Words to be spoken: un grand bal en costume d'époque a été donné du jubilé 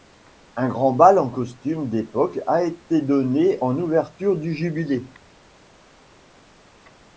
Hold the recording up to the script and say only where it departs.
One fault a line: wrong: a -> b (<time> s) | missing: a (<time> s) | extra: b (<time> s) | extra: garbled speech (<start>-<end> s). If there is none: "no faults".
extra: en ouverture (3.6 s)